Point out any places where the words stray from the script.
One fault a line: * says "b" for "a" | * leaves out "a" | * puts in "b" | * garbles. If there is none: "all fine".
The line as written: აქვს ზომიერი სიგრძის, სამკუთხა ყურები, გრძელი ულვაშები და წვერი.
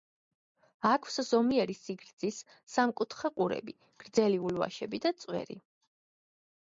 all fine